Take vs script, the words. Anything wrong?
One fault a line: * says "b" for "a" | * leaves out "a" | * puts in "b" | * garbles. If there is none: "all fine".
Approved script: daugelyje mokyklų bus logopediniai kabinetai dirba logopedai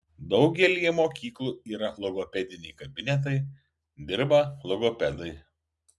* says "yra" for "bus"